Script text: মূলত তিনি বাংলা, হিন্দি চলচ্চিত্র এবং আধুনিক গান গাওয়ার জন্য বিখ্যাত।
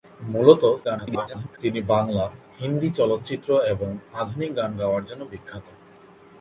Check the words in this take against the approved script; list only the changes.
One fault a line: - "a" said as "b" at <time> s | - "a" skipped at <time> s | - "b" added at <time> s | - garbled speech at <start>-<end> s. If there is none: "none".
- garbled speech at 0.8-1.6 s